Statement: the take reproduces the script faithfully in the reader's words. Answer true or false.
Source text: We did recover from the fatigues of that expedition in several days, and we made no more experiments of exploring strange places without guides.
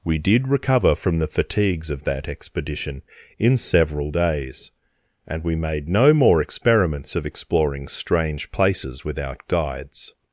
true